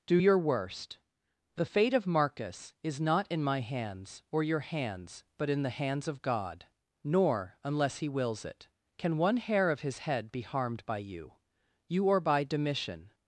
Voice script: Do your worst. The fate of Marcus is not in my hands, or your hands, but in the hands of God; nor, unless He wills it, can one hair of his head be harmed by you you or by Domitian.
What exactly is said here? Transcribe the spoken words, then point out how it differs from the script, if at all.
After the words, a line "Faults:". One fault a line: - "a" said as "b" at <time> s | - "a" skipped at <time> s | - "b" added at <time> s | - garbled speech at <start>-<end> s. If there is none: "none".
Do your worst. The fate of Marcus is not in my hands, or your hands, but in the hands of God; nor, unless He wills it, can one hair of his head be harmed by you you or by Domitian.
Faults:
none